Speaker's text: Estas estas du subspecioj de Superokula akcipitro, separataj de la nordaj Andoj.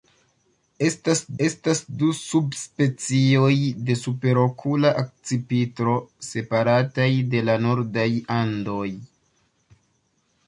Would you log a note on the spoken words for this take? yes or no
no